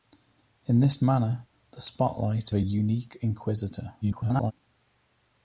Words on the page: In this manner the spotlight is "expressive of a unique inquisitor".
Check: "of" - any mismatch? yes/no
yes